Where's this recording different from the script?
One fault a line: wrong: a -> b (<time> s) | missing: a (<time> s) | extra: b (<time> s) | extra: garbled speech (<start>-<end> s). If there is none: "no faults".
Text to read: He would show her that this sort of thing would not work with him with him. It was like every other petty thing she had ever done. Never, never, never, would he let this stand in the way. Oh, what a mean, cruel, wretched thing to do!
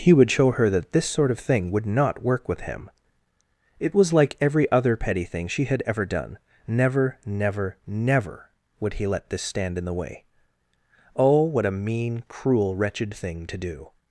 missing: with him (2.9 s)